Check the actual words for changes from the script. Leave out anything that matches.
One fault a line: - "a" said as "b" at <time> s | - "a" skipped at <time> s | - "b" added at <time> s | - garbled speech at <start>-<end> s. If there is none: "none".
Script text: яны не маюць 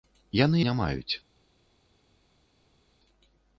none